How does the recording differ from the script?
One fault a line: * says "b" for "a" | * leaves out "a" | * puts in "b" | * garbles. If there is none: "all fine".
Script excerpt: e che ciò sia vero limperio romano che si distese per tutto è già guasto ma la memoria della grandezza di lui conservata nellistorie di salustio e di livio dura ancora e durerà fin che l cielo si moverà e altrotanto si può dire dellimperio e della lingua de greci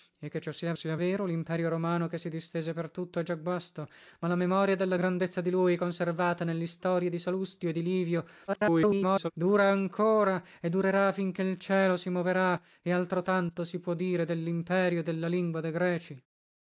* puts in "sia"
* garbles